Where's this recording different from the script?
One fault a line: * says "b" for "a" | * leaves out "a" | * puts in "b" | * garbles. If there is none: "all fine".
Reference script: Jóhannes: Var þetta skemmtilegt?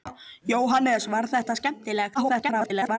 * garbles